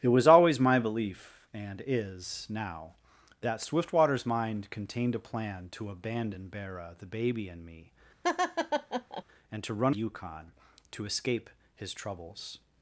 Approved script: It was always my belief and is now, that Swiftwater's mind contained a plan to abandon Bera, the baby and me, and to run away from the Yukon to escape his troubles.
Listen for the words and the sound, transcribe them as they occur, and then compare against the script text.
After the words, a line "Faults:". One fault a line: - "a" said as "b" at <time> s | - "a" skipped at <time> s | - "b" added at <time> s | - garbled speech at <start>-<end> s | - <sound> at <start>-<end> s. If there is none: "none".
It was always my belief and is now, that Swiftwater's mind contained a plan to abandon Bera, the baby and me, and to run Yukon to escape his troubles.
Faults:
- laugh at 8.2-9.2 s
- "away from the" skipped at 9.9 s